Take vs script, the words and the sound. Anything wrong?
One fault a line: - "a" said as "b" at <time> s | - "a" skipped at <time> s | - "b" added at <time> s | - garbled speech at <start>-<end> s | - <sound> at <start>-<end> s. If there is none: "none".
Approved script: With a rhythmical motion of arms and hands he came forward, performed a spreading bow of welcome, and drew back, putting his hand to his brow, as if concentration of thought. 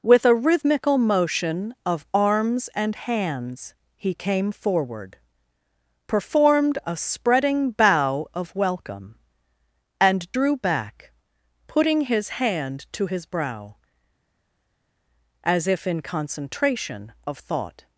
- "in" added at 15.9 s